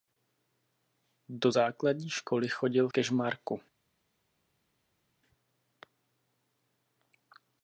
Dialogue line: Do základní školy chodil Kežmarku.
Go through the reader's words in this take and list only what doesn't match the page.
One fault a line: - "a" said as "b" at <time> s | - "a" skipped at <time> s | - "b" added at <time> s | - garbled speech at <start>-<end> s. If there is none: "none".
none